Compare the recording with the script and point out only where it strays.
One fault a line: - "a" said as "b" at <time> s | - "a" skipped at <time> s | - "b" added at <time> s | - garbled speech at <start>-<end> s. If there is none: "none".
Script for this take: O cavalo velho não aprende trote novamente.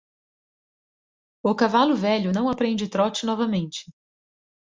none